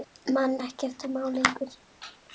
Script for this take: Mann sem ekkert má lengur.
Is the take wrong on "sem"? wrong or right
wrong